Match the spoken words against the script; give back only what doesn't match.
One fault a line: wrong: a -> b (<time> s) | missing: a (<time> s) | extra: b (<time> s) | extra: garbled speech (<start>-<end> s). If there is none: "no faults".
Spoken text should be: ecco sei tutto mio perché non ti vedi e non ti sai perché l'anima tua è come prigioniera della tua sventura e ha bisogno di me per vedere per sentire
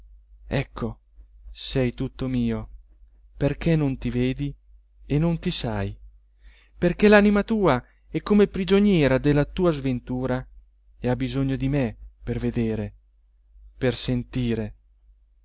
no faults